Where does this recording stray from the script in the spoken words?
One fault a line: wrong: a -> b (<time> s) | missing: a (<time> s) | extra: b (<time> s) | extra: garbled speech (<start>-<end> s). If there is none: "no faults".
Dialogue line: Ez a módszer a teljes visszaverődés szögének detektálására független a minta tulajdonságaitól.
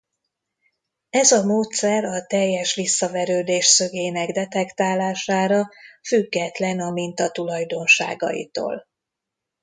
no faults